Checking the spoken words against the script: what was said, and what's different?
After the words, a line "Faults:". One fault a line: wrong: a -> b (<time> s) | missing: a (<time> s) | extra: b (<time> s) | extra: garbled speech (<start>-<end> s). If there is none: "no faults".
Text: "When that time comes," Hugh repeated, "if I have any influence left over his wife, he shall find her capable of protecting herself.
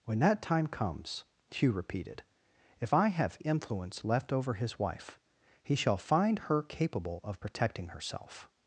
"When that time comes," Hugh repeated, "if I have influence left over his wife, he shall find her capable of protecting herself.
Faults:
missing: any (3.4 s)